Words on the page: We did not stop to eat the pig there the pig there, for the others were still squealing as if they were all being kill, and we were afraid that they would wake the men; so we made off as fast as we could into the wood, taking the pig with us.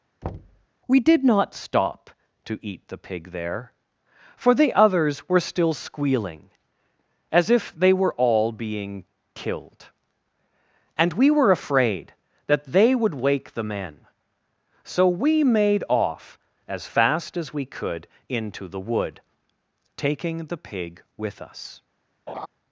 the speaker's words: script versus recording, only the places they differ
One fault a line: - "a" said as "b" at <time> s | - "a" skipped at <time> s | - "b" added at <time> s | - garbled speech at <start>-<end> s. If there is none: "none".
- "the pig there" skipped at 3.7 s
- "kill" said as "killed" at 9.3 s